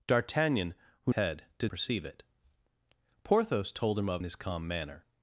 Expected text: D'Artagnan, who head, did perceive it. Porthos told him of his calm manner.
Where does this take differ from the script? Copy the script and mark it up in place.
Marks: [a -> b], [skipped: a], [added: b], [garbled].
D'Artagnan, who head, did perceive it. Porthos told him of his calm manner.